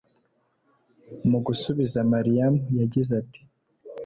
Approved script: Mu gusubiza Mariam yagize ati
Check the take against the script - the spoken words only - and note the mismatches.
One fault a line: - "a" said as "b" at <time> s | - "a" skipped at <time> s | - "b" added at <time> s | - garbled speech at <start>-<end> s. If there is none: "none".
none